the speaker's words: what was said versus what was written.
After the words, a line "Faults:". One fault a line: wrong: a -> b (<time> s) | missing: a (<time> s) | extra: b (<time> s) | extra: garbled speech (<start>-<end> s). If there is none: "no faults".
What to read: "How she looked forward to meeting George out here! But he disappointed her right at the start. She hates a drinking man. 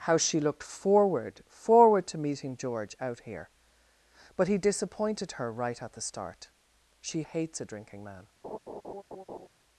"How she looked forward forward to meeting George out here! But he disappointed her right at the start. She hates a drinking man.
Faults:
extra: forward (1.5 s)